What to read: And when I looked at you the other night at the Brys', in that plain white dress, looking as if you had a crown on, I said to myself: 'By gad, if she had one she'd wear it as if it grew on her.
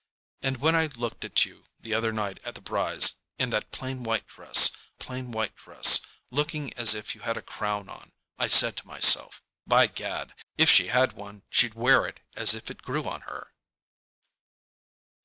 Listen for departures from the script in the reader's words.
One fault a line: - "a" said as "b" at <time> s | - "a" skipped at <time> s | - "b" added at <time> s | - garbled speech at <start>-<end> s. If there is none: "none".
- "plain white dress" added at 5.0 s